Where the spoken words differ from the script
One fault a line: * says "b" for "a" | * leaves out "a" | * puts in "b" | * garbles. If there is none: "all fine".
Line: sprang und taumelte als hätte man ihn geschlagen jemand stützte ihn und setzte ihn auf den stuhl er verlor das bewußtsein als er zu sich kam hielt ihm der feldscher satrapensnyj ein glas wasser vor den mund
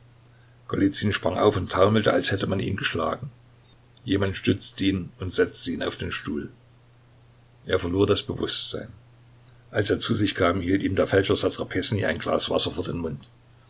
* puts in "auf"